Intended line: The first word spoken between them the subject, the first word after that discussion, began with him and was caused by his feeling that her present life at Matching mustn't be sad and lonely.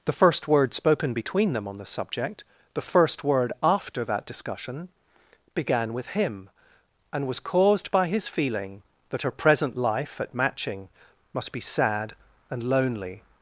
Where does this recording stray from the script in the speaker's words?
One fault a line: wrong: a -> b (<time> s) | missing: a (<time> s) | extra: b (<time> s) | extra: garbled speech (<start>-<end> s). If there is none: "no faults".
extra: on (1.7 s)
wrong: mustn't -> must (11.3 s)